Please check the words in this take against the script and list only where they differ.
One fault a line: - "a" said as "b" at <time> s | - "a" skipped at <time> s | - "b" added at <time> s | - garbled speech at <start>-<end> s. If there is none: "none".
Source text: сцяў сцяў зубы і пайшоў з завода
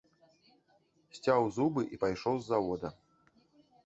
- "сцяў" skipped at 1.4 s